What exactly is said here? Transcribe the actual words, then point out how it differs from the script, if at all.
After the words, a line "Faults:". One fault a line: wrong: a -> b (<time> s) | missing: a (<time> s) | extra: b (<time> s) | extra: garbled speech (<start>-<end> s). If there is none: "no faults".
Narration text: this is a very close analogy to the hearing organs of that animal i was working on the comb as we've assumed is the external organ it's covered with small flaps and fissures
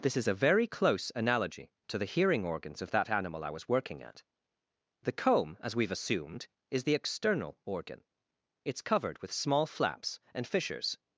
this is a very close analogy to the hearing organs of that animal i was working at the comb as we've assumed is the external organ it's covered with small flaps and fissures
Faults:
wrong: on -> at (4.0 s)